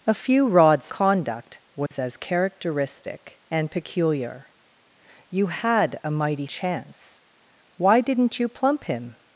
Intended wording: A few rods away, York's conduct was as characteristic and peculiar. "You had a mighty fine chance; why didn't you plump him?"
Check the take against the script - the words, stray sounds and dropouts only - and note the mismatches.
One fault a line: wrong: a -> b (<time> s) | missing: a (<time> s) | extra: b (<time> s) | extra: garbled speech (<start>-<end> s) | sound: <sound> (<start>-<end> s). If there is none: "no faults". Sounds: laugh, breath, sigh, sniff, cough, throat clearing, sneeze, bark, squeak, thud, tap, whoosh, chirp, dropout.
missing: away York's (0.9 s)
sound: dropout (1.9-1.9 s)
missing: fine (6.5 s)